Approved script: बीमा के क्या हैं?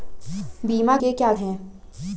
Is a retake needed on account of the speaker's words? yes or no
no